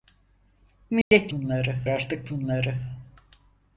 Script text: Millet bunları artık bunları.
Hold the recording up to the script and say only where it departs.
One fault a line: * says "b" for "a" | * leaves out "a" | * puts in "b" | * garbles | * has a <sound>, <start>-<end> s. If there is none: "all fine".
* has a dropout, 1.0-1.1 s